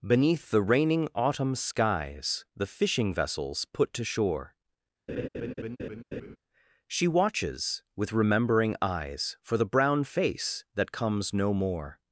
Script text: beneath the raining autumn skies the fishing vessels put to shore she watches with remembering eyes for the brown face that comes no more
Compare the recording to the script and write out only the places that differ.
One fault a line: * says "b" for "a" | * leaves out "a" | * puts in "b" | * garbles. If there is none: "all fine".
all fine